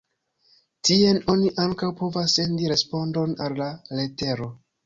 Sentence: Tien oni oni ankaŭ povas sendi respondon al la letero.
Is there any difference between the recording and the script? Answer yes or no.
yes